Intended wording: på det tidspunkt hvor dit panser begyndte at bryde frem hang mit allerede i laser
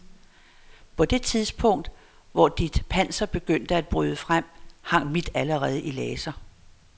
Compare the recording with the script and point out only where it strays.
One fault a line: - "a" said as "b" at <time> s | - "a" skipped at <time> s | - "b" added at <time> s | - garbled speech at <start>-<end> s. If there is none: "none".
none